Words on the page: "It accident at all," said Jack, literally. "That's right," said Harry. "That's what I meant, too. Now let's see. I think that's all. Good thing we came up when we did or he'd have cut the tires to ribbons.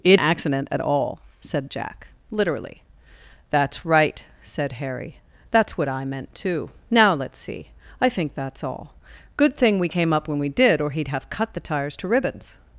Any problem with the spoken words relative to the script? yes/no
no